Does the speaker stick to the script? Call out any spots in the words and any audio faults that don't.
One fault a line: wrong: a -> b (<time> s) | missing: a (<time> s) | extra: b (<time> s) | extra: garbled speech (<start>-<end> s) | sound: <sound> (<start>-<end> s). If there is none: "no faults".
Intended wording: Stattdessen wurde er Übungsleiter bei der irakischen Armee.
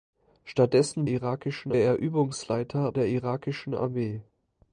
wrong: wurde -> irakischen (1.0 s)
missing: bei (2.9 s)